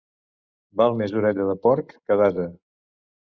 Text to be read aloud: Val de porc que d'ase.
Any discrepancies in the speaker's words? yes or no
yes